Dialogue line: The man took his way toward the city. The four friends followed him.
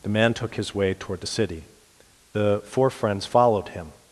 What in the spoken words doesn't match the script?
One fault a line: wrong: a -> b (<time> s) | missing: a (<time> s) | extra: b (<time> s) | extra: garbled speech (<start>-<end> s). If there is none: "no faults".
no faults